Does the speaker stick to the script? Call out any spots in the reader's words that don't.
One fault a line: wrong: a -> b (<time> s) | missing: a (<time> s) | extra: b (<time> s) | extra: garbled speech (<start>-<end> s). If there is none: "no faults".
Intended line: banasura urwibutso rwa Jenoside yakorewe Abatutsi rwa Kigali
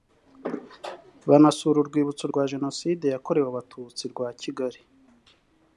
no faults